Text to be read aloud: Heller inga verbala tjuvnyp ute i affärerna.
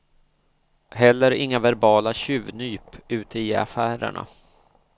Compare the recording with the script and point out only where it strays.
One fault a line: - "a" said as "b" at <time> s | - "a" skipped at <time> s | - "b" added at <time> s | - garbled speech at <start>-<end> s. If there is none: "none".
none